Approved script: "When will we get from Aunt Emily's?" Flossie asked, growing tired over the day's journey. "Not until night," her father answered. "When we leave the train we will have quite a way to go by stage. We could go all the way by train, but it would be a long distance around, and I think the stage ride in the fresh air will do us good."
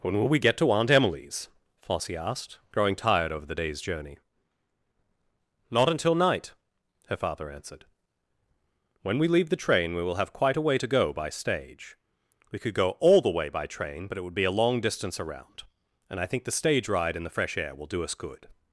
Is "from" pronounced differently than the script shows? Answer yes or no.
yes